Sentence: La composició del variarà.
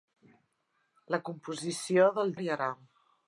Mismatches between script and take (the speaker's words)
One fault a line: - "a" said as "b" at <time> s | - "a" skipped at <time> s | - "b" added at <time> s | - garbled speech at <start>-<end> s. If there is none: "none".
none